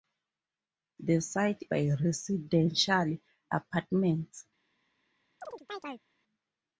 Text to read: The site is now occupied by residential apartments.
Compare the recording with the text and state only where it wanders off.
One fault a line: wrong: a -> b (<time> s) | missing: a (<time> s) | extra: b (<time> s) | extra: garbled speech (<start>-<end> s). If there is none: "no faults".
missing: is now occupied (1.6 s)